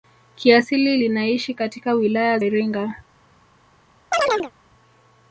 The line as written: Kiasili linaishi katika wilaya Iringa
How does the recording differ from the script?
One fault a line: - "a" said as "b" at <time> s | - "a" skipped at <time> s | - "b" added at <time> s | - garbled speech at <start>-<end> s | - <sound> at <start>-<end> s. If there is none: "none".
- chirp at 4.1-4.5 s